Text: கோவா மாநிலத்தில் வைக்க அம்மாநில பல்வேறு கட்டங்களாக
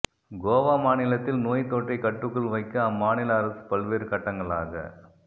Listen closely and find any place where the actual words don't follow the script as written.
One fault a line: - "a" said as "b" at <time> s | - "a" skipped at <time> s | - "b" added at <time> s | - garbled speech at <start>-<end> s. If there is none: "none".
- "நோய் தொற்றை கட்டுக்குள்" added at 1.4 s
- "அரசு" added at 3.4 s